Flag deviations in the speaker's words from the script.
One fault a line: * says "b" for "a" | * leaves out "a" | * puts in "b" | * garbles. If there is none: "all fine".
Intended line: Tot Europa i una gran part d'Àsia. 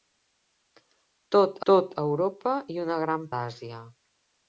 * puts in "tot"
* leaves out "part"